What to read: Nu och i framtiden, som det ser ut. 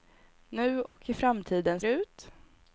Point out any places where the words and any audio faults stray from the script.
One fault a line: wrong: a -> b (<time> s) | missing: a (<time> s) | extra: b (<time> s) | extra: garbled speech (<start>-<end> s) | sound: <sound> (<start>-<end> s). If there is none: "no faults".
sound: dropout (0.9-1.0 s)
missing: som det ser (1.8 s)